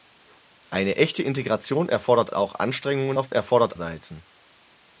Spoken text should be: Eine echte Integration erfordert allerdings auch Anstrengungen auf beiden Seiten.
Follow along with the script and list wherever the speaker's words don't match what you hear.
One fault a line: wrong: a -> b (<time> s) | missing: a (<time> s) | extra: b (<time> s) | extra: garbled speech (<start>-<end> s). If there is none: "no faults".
missing: allerdings (2.3 s)
wrong: beiden -> erfordert (3.3 s)